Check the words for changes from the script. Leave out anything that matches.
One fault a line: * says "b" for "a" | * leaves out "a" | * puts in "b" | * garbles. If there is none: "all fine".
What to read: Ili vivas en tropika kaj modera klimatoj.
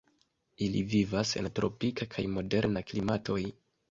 all fine